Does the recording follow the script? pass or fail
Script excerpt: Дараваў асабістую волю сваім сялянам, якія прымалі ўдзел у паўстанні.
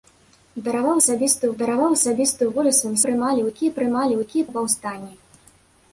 fail